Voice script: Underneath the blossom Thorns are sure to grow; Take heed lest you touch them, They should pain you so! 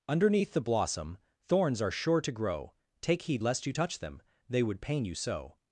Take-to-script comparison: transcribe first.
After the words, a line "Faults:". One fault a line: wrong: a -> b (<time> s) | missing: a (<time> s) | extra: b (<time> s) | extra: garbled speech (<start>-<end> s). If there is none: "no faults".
Underneath the blossom Thorns are sure to grow; Take heed lest you touch them, They would pain you so!
Faults:
wrong: should -> would (4.6 s)